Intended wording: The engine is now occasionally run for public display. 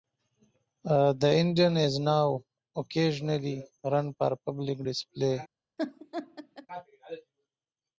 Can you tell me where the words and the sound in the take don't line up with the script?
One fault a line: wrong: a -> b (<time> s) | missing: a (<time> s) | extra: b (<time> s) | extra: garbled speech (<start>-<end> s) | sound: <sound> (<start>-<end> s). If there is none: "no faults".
sound: laugh (5.8-6.7 s)